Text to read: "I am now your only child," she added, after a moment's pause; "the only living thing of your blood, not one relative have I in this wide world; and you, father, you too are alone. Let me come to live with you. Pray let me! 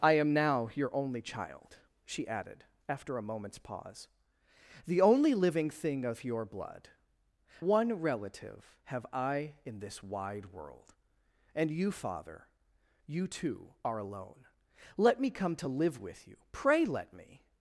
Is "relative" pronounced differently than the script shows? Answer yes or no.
no